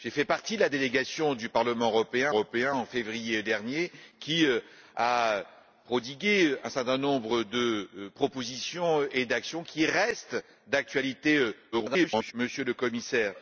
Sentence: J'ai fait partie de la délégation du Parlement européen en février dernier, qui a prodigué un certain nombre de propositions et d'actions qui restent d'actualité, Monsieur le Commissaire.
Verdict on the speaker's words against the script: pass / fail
fail